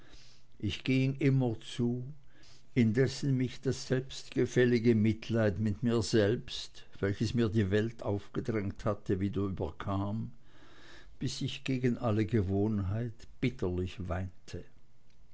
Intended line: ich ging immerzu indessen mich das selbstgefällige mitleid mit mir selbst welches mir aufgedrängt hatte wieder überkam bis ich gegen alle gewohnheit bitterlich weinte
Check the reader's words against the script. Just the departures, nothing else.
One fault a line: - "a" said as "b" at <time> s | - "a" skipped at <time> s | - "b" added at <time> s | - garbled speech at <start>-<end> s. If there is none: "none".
- "die welt" added at 7.5 s